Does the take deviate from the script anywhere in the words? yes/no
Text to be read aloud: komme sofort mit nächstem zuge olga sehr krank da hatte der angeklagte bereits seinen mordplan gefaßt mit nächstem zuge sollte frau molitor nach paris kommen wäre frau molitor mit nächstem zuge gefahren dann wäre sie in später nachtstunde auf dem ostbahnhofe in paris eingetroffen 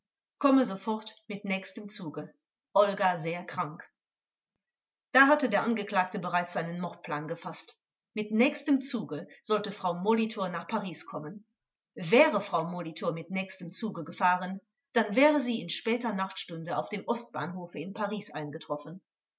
no